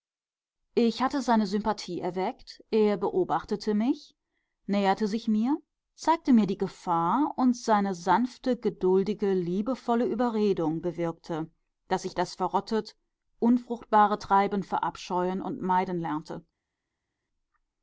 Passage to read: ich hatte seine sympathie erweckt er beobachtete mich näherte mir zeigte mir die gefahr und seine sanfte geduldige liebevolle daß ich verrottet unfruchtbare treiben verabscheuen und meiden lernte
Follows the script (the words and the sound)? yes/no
no